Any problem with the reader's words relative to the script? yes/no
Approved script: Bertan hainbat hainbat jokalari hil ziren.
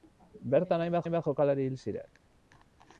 no